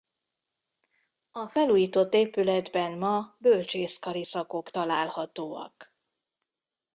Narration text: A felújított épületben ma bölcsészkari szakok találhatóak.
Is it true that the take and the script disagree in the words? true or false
false